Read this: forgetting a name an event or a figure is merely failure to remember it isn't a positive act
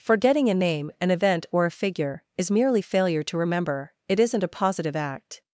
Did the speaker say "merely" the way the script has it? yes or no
yes